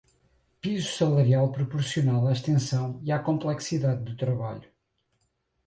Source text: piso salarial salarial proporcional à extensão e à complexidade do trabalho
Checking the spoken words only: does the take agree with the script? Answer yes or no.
no